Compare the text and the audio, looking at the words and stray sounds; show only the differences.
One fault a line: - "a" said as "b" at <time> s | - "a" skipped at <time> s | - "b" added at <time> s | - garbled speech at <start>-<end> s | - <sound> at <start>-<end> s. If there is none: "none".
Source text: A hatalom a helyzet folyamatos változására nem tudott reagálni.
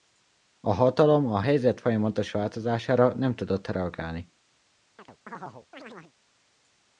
- chirp at 5.0-6.1 s